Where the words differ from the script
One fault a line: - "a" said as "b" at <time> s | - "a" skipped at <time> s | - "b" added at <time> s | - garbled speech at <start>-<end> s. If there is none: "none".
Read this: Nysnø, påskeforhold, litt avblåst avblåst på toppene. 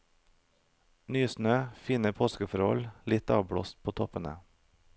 - "fine" added at 1.9 s
- "avblåst" skipped at 3.8 s